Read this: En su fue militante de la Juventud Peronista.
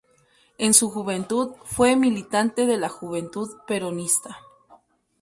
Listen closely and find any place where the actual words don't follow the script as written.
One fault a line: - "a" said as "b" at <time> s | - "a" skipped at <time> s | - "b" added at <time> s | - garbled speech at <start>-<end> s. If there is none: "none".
- "juventud" added at 0.9 s